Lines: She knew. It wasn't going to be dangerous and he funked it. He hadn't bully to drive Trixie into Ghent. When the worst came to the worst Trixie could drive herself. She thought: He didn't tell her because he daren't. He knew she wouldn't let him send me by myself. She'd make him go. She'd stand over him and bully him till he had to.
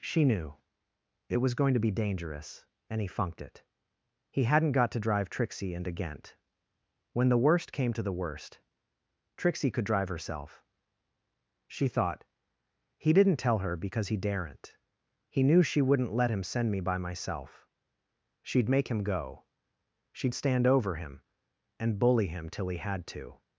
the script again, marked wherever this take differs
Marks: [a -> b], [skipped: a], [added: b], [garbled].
She knew. It [wasn't -> was] going to be dangerous and he funked it. He hadn't [bully -> got] to drive Trixie into Ghent. When the worst came to the worst Trixie could drive herself. She thought: He didn't tell her because he daren't. He knew she wouldn't let him send me by myself. She'd make him go. She'd stand over him and bully him till he had to.